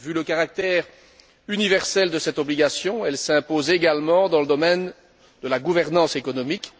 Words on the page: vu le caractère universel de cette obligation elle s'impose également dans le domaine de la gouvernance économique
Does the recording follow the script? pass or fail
pass